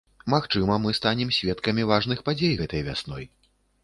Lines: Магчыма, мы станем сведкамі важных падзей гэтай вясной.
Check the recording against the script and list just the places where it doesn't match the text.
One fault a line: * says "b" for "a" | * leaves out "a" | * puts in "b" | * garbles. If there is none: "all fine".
all fine